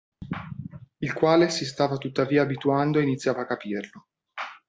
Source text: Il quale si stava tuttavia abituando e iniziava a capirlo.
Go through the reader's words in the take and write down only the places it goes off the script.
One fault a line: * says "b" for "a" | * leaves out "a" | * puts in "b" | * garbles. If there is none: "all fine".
all fine